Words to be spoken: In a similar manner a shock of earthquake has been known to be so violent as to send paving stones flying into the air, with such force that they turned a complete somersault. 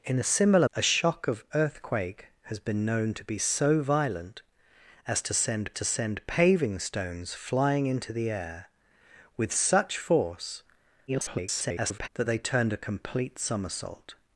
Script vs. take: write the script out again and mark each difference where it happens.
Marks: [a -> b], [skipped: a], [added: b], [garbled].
In a similar [skipped: manner] a shock of earthquake has been known to be so violent as to send [added: to send] paving stones flying into the air, with such force [garbled] that they turned a complete somersault.